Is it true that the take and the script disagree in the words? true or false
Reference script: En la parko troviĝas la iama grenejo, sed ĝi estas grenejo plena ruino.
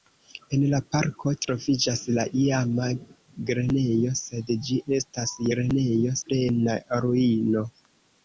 false